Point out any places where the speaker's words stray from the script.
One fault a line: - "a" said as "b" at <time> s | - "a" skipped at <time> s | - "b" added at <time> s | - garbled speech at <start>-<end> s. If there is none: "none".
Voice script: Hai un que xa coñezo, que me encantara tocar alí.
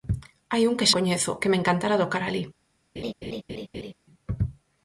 - "xa" skipped at 0.9 s